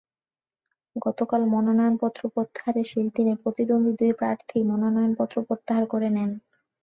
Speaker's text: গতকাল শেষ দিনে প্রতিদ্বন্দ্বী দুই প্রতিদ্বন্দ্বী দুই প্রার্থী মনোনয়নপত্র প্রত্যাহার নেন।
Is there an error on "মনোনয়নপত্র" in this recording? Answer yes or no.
no